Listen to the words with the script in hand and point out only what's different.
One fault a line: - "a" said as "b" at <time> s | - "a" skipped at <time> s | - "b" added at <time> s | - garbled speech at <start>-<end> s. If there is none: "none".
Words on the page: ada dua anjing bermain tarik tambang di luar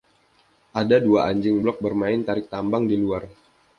- "blog" added at 1.6 s